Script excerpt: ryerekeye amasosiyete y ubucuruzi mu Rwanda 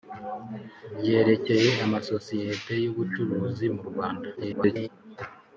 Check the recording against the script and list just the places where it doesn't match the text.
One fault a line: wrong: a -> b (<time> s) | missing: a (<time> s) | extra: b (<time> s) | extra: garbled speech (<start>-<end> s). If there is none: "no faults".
extra: garbled speech (4.4-4.9 s)